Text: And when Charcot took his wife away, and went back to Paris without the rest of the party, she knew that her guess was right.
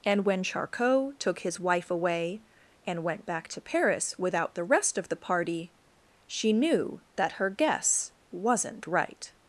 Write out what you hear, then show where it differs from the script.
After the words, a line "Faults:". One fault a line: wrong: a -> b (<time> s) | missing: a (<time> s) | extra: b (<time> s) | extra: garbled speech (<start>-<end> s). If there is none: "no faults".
And when Charcot took his wife away, and went back to Paris without the rest of the party, she knew that her guess wasn't right.
Faults:
wrong: was -> wasn't (8.3 s)